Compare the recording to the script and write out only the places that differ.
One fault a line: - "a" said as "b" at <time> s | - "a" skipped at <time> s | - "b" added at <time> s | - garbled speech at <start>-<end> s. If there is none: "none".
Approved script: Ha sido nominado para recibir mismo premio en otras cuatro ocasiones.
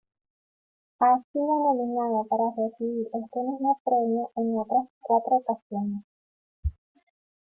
- "este" added at 3.0 s